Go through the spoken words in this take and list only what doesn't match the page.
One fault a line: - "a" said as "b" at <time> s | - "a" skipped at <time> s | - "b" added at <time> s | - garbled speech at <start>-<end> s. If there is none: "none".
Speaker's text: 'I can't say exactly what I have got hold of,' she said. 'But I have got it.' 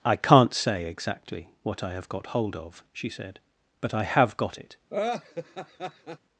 none